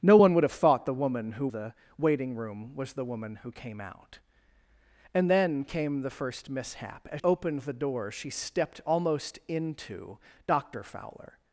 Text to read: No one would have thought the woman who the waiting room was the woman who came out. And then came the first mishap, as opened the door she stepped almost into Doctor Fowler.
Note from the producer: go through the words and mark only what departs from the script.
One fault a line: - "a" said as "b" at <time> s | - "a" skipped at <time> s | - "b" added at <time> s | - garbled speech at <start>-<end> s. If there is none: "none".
none